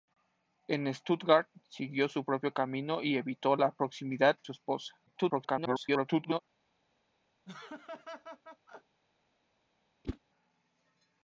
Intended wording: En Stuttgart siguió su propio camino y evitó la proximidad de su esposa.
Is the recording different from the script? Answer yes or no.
yes